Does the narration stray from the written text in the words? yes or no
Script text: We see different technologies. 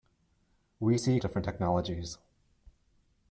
no